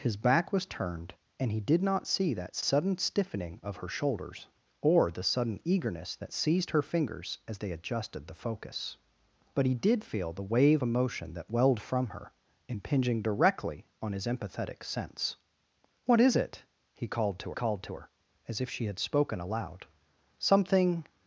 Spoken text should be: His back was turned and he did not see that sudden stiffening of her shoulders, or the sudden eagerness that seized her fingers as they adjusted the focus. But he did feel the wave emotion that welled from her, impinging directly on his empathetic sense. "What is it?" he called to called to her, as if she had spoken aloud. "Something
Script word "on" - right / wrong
right